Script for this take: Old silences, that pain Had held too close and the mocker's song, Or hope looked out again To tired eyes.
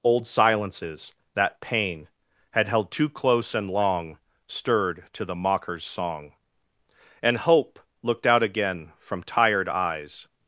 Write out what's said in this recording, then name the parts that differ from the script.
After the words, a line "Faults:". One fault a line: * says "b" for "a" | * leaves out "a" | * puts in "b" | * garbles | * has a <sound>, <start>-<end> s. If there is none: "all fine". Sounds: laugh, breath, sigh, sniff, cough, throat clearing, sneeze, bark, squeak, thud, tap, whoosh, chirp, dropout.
Old silences, that pain Had held too close and long, Stirred to the mocker's song, And hope looked out again From tired eyes.
Faults:
* puts in "long Stirred to"
* says "And" for "Or"
* says "From" for "To"